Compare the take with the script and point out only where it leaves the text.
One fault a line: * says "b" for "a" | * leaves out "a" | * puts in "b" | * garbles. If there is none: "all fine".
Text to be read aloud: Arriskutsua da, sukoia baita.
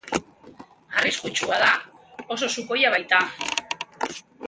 * puts in "oso"